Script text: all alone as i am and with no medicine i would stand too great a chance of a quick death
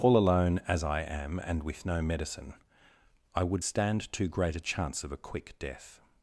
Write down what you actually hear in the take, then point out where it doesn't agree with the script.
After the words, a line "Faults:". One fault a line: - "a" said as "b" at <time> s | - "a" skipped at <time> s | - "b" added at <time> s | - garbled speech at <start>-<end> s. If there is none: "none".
all alone as i am and with no medicine i would stand too great a chance of a quick death
Faults:
none